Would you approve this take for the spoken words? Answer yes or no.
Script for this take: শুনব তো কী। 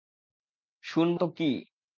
yes